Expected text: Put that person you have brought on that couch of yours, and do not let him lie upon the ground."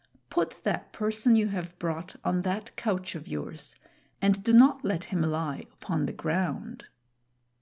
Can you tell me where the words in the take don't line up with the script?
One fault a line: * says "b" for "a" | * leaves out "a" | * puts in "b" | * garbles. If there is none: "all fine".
all fine